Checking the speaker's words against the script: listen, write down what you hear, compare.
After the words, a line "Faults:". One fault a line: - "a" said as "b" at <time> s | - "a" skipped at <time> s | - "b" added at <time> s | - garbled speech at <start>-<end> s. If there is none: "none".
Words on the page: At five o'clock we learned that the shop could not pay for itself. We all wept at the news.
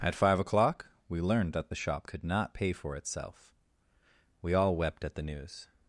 At five o'clock we learned that the shop could not pay for itself. We all wept at the news.
Faults:
none